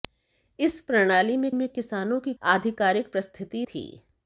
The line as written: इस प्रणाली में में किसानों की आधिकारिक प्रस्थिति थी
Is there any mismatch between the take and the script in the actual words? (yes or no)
no